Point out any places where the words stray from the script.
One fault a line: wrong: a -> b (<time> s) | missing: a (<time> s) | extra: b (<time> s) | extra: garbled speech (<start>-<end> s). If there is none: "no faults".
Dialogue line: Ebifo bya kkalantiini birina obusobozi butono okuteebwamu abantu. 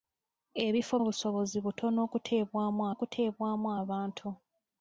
missing: bya kkalantiini birina (0.9 s)
extra: okuteebwamu (2.9 s)